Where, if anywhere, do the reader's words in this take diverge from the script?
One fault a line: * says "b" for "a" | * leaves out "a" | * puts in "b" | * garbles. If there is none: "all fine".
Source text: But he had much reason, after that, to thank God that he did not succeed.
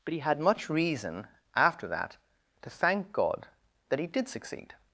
* leaves out "not"